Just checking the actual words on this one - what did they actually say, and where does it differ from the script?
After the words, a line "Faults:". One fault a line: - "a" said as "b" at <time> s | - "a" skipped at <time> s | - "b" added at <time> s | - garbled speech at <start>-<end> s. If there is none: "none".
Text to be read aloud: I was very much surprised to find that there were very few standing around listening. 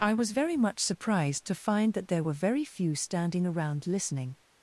I was very much surprised to find that there were very few standing around listening.
Faults:
none